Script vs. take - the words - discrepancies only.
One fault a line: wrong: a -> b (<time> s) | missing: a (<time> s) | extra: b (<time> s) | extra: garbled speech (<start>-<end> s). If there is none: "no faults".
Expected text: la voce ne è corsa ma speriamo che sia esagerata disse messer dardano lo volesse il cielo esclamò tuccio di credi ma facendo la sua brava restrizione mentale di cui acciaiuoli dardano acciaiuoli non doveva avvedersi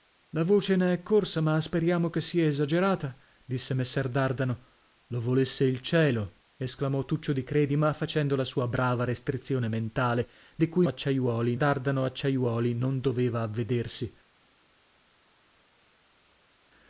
no faults